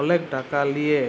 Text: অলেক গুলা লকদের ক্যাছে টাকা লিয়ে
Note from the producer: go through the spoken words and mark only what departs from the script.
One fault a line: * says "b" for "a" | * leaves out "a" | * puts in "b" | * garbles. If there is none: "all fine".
* leaves out "গুলা লকদের ক্যাছে"